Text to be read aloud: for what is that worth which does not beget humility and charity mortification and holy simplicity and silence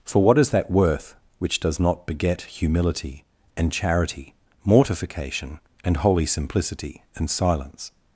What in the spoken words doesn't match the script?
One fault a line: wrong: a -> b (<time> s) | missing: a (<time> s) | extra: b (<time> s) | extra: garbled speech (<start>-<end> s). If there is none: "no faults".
no faults